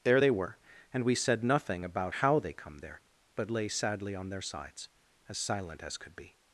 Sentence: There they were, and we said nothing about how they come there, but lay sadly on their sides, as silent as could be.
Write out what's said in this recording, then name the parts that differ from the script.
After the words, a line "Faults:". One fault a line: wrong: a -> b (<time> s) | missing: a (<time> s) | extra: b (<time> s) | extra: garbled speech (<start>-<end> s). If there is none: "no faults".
There they were, and we said nothing about how they come there, but lay sadly on their sides, as silent as could be.
Faults:
no faults